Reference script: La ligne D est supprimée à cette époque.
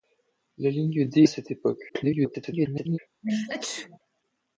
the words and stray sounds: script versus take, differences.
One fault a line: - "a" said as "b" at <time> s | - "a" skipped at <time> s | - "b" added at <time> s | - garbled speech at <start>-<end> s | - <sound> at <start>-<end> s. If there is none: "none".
- "est supprimée" skipped at 1.2 s
- garbled speech at 1.9-3.0 s
- sneeze at 3.2-4.0 s